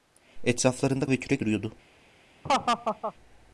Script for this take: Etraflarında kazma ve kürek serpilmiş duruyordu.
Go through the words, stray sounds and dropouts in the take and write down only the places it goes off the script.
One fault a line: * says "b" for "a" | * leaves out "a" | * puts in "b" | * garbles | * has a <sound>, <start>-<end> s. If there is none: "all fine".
* leaves out "kazma"
* leaves out "serpilmiş"
* has a laugh, 2.4-3.1 s